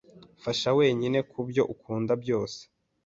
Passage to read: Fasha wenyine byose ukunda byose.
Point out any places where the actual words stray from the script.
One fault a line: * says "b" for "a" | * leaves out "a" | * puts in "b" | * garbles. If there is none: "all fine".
* says "kubyo" for "byose"